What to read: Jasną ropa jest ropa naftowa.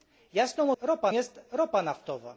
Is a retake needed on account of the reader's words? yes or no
no